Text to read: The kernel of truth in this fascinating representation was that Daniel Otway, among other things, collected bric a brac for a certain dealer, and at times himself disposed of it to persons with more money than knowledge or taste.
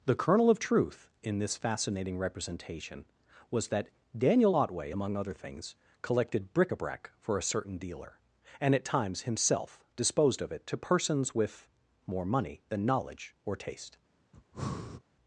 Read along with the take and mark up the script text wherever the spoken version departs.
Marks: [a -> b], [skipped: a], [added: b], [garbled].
The kernel of truth in this fascinating representation was that Daniel Otway, among other things, collected bric a brac for a certain dealer, and at times himself disposed of it to persons with more money than knowledge or taste.